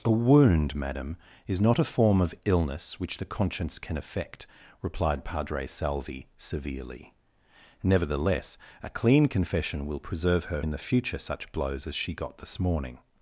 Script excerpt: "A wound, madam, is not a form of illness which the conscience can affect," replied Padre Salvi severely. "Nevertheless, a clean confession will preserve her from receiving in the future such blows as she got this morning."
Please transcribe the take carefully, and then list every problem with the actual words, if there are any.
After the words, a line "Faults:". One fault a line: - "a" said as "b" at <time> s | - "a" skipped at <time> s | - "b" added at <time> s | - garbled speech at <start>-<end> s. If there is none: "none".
"A wound, madam, is not a form of illness which the conscience can affect," replied Padre Salvi severely. "Nevertheless, a clean confession will preserve her in the future such blows as she got this morning."
Faults:
- "from receiving" skipped at 10.6 s